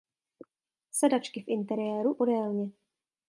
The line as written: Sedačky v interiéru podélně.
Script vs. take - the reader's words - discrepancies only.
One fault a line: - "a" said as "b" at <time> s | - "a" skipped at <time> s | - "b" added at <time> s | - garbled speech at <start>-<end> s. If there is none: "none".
none